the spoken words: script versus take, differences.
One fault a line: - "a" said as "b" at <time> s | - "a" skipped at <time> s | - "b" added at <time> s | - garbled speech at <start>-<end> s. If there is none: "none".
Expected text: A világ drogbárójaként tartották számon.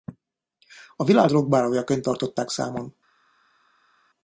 none